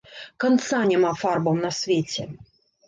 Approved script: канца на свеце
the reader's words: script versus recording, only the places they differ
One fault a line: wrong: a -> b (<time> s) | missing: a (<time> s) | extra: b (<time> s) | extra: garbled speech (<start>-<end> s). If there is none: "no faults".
extra: няма фарбам (0.9 s)